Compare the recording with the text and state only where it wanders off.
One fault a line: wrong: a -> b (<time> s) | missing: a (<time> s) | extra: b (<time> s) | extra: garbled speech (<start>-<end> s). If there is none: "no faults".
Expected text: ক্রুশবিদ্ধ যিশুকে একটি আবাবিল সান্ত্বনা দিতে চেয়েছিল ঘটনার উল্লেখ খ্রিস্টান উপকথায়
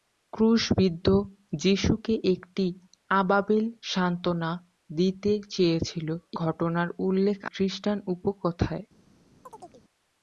no faults